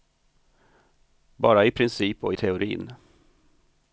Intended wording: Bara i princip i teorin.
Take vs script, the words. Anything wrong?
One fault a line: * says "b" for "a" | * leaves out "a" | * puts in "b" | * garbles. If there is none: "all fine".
* puts in "och"